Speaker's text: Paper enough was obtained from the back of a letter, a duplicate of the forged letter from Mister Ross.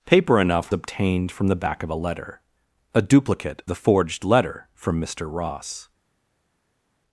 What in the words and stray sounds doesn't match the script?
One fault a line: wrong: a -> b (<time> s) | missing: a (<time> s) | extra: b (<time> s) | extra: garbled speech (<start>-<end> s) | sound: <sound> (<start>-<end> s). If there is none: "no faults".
missing: was (0.7 s)
missing: of (3.6 s)